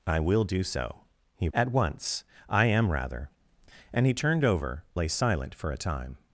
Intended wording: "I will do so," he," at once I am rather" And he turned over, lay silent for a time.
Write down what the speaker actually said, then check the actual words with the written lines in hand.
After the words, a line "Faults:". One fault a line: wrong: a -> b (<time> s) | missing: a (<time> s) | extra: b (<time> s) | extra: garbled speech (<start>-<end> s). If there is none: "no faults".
"I will do so," he," at once I am rather" And he turned over, lay silent for a time.
Faults:
no faults